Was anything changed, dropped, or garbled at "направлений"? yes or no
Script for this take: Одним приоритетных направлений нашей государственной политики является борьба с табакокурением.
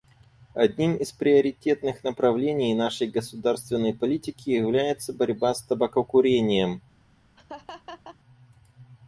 no